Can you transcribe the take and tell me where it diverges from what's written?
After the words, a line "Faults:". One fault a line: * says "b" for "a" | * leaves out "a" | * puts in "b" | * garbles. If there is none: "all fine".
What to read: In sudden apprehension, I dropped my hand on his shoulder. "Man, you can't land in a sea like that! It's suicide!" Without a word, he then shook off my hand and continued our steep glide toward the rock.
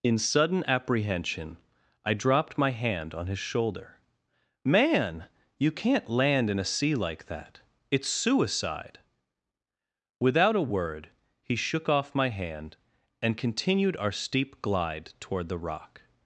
In sudden apprehension, I dropped my hand on his shoulder. "Man, you can't land in a sea like that! It's suicide!" Without a word, he shook off my hand and continued our steep glide toward the rock.
Faults:
* leaves out "then"